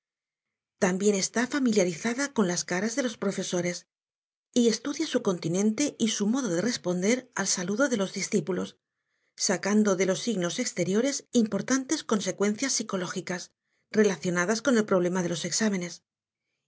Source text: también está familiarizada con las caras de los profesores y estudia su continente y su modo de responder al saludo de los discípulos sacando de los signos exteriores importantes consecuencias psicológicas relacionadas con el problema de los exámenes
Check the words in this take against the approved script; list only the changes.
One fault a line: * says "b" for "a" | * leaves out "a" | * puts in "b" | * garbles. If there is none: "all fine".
all fine